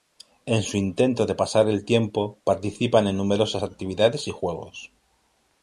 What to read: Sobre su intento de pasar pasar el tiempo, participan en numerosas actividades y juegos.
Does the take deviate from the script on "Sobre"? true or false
true